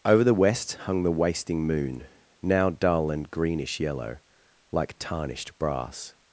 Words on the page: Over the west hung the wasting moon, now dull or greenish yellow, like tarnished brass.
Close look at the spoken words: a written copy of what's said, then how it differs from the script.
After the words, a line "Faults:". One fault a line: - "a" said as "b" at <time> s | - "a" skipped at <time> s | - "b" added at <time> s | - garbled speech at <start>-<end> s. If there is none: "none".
Over the west hung the wasting moon, now dull and greenish yellow, like tarnished brass.
Faults:
- "or" said as "and" at 3.1 s